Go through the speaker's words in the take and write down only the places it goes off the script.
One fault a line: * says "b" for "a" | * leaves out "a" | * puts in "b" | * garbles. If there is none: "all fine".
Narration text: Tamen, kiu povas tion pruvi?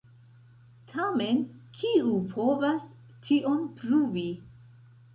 all fine